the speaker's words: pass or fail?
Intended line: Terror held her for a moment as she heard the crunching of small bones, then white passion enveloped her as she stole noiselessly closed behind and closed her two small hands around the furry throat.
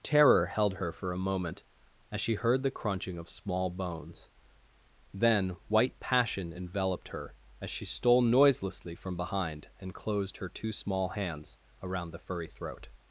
fail